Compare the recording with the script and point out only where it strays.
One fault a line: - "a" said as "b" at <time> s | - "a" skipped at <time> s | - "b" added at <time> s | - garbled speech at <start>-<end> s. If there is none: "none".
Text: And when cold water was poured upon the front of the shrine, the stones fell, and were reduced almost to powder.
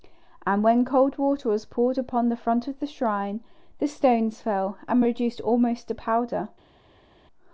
none